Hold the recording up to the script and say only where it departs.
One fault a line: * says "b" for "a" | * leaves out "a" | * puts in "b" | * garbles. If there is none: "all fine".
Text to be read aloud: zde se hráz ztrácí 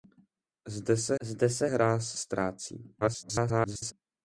* puts in "zde se"
* garbles